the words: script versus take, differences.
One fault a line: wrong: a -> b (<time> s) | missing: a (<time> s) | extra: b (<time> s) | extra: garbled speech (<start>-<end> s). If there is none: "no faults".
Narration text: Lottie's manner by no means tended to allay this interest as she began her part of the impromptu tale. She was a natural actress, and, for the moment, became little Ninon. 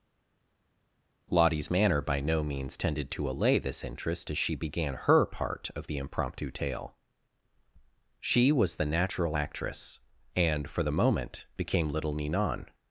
wrong: a -> the (8.7 s)